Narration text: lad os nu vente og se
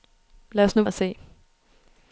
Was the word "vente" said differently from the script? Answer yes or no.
yes